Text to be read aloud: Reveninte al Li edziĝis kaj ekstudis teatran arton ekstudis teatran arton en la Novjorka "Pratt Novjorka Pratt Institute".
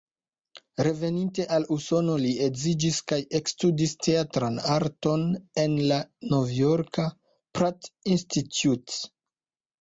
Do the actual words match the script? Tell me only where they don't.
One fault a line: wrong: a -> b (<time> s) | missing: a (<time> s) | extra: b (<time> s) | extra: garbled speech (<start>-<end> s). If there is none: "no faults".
extra: Usono (1.8 s)
missing: ekstudis teatran arton (5.3 s)
missing: Novjorka Pratt (7.9 s)